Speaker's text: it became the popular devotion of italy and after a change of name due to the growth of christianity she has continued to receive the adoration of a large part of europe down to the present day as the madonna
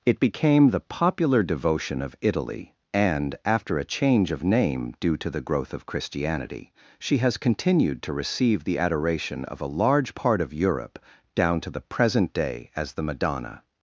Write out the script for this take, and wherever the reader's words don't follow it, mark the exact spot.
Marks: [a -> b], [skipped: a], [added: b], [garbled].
it became the popular devotion of italy and after a change of name due to the growth of christianity she has continued to receive the adoration of a large part of europe down to the present day as the madonna